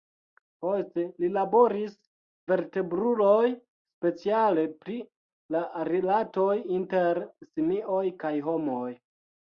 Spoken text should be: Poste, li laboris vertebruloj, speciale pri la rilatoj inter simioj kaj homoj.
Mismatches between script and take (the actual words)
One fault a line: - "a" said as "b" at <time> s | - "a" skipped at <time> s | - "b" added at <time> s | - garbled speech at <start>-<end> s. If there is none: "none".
none